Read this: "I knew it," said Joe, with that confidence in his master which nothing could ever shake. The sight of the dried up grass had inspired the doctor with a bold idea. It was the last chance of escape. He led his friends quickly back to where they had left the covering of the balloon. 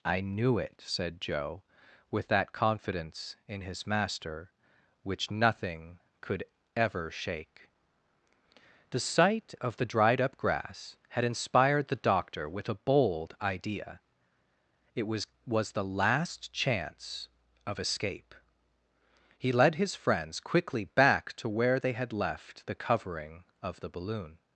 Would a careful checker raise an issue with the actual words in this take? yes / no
yes